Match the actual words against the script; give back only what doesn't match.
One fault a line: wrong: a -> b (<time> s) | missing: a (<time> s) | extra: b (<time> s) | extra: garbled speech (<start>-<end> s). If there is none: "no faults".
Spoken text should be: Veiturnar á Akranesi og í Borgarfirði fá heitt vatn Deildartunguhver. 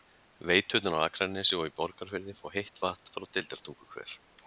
extra: frá (3.2 s)